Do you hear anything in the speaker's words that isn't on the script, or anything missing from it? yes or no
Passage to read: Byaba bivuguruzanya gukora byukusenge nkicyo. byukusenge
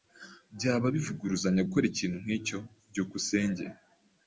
yes